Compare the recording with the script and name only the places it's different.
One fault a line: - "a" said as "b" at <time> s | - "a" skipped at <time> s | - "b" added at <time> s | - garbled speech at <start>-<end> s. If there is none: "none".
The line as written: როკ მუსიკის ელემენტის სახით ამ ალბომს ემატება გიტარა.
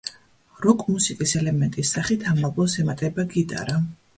none